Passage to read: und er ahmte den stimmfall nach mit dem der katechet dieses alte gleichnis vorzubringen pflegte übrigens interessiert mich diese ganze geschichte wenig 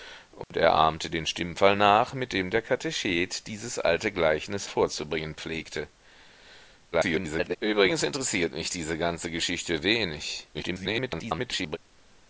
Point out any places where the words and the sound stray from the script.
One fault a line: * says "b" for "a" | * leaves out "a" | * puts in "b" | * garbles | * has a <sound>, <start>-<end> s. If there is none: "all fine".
* has a dropout, 0.4-0.5 s
* garbles
* garbles